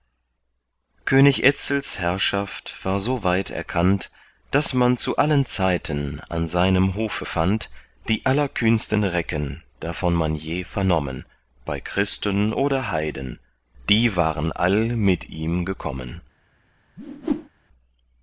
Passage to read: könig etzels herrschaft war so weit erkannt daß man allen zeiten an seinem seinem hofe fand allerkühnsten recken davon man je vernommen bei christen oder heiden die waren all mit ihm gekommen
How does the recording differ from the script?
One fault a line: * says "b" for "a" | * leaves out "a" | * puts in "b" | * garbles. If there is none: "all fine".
* puts in "zu"
* leaves out "seinem"
* puts in "die"